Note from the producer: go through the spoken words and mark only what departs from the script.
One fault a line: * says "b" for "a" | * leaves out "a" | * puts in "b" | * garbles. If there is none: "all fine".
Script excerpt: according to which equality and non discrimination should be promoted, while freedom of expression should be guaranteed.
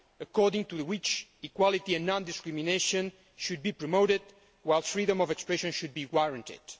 all fine